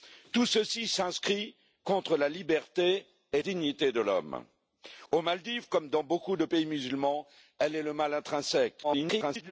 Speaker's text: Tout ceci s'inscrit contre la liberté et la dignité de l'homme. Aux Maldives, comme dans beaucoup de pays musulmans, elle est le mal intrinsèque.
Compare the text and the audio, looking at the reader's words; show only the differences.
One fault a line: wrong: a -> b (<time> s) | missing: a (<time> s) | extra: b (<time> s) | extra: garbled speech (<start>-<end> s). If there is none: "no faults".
missing: la (3.4 s)
extra: garbled speech (8.8-9.5 s)